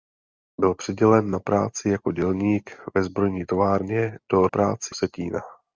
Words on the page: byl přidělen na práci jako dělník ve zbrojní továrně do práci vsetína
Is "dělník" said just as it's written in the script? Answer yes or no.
yes